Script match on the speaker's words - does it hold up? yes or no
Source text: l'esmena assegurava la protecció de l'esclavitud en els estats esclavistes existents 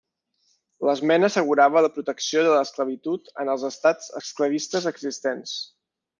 yes